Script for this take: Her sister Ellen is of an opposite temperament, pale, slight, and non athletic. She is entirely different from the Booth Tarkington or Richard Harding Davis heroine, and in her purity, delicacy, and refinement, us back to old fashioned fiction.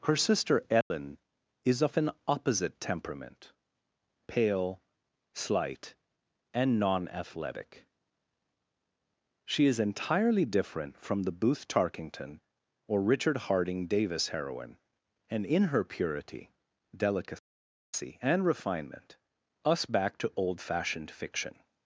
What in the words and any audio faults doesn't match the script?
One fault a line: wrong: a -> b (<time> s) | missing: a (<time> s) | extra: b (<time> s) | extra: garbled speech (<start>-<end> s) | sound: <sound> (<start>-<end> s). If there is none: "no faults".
sound: dropout (0.8-0.9 s)